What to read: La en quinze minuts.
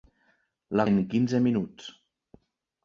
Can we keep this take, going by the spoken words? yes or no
yes